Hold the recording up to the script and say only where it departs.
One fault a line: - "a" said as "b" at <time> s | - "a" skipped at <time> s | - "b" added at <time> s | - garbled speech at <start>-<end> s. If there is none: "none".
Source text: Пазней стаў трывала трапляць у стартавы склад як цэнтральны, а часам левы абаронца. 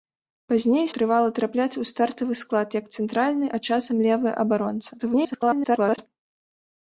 - "стаў" skipped at 0.9 s
- garbled speech at 5.0-6.1 s